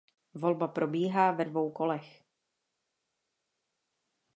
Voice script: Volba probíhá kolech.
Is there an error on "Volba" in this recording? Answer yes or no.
no